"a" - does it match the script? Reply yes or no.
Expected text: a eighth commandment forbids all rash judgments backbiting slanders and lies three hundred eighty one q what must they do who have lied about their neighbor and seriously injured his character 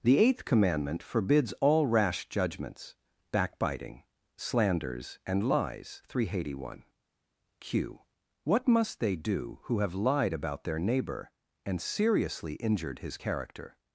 no